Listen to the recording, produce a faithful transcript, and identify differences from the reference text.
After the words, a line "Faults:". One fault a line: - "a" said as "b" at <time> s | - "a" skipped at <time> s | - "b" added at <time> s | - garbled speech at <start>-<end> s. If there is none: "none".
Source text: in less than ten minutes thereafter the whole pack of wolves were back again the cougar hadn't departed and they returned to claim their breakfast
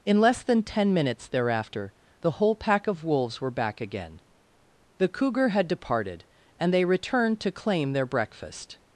in less than ten minutes thereafter the whole pack of wolves were back again the cougar had departed and they returned to claim their breakfast
Faults:
- "hadn't" said as "had" at 5.5 s